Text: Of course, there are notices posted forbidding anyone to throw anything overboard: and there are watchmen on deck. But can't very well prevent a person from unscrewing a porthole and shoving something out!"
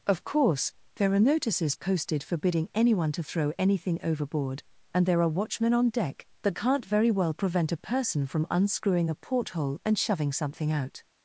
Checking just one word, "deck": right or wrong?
right